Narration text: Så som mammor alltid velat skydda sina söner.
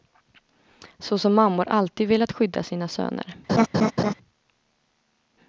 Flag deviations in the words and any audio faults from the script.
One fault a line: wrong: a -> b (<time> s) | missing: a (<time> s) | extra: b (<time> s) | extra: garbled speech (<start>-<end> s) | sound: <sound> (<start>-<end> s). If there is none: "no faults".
sound: laugh (3.5-4.1 s)